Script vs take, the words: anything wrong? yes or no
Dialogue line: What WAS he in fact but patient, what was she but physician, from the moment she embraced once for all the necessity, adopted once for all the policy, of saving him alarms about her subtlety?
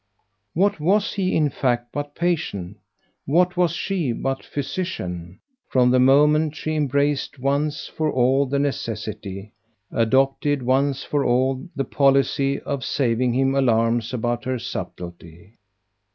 no